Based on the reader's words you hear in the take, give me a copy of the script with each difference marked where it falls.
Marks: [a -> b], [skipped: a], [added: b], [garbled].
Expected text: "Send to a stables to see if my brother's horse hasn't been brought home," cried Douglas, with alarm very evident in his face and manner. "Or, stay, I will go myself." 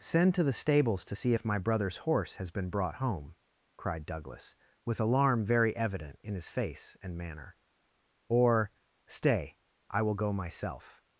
"Send to [a -> the] stables to see if my brother's horse [hasn't -> has] been brought home," cried Douglas, with alarm very evident in his face and manner. "Or, stay, I will go myself."